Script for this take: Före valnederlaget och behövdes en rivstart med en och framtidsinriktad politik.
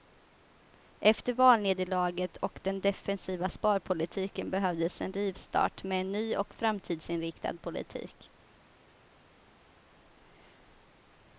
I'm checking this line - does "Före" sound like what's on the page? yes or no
no